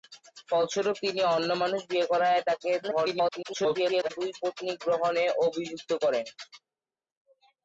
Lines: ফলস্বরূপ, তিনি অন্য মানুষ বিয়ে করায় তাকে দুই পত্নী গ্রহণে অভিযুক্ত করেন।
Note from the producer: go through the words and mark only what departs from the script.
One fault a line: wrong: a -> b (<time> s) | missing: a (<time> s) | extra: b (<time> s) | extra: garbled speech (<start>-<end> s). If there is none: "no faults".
extra: garbled speech (2.8-4.1 s)